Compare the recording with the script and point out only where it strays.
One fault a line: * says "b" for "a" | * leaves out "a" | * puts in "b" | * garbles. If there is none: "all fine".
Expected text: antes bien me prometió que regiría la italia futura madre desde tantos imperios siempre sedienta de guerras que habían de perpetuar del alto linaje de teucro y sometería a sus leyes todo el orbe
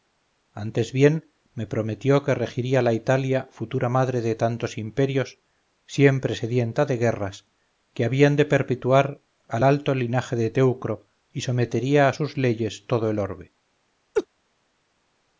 * says "de" for "desde"
* says "al" for "del"